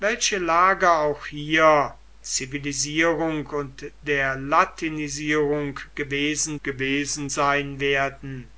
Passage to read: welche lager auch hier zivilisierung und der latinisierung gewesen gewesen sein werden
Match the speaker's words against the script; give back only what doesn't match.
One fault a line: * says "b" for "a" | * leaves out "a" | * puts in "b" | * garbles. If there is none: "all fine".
all fine